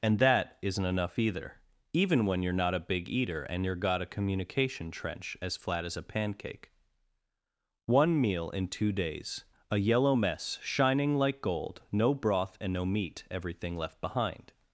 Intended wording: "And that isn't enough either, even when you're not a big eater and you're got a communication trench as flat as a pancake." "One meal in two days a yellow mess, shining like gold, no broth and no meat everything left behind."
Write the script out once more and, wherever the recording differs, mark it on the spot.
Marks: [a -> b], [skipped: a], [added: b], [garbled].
"And that isn't enough either, even when you're not a big eater and you're got a communication trench as flat as a pancake." "One meal in two days a yellow mess, shining like gold, no broth and no meat everything left behind."